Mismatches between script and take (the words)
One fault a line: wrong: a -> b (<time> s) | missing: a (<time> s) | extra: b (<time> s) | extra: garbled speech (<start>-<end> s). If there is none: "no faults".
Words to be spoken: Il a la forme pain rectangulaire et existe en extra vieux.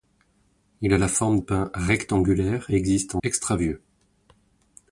no faults